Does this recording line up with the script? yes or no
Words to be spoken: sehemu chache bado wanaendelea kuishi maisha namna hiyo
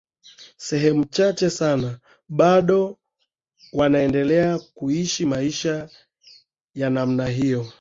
no